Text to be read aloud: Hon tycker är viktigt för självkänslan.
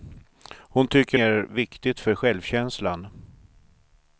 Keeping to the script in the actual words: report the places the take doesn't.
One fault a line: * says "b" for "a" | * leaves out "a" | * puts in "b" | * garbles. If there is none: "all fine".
all fine